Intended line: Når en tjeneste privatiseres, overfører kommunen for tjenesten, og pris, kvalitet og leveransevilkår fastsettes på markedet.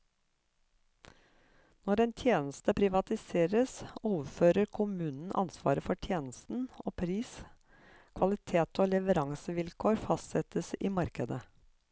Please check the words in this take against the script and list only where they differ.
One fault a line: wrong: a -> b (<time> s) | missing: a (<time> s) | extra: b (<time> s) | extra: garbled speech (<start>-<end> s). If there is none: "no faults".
extra: ansvaret (5.4 s)
wrong: på -> i (10.8 s)